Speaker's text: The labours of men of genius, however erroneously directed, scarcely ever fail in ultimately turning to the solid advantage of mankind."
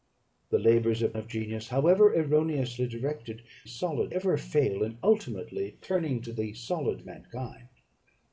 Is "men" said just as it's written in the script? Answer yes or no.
no